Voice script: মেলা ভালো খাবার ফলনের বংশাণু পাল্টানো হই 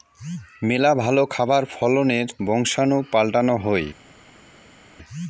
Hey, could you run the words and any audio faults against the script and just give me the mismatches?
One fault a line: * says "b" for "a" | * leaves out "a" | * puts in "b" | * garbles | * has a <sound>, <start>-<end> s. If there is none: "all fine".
all fine